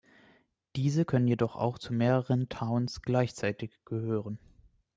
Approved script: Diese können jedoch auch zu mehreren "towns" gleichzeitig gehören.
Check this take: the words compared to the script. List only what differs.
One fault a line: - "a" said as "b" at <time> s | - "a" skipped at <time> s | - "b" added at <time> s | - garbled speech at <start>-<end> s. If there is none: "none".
none